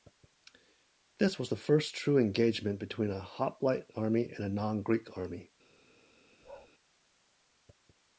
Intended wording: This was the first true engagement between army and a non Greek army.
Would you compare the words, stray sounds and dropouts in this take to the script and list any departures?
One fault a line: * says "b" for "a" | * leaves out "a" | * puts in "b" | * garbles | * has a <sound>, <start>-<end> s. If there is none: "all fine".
* puts in "a hoplite"
* has a bark, 6.4-6.7 s